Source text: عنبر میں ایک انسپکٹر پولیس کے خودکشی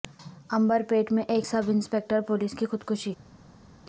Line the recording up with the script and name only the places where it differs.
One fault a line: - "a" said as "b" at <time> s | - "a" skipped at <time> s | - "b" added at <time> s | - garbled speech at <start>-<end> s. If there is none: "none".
- "پیٹ" added at 0.9 s
- "سب" added at 1.4 s
- "کے" said as "کی" at 2.5 s